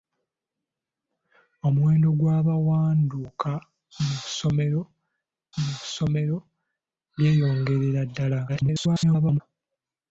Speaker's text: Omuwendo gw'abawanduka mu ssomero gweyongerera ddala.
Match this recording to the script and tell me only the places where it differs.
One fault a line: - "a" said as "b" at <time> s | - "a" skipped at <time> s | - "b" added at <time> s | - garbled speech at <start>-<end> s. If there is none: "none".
- "mu ssomero" added at 5.6 s
- garbled speech at 8.5-9.4 s